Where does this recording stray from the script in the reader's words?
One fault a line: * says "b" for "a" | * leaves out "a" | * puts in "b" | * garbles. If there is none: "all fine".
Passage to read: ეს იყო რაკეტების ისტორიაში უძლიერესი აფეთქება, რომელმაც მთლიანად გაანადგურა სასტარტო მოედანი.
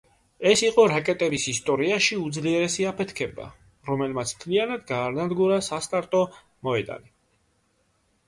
all fine